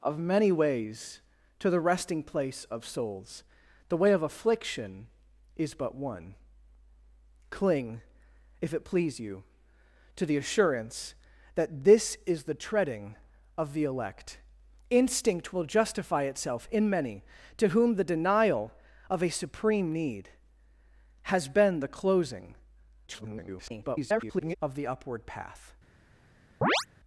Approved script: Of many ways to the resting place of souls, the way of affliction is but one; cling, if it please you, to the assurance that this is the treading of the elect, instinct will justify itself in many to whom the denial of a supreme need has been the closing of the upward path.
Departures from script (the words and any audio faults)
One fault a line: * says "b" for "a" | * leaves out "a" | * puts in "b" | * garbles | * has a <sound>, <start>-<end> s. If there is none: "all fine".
* garbles
* has a chirp, 26.6-26.9 s